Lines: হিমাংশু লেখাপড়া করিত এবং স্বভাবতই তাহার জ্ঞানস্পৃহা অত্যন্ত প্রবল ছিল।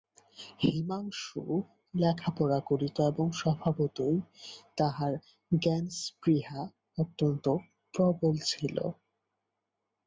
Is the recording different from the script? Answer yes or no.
no